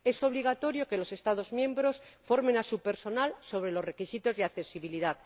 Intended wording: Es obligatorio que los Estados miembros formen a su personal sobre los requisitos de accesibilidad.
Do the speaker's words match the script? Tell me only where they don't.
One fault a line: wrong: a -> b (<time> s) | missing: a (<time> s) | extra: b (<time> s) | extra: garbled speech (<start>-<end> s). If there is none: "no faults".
no faults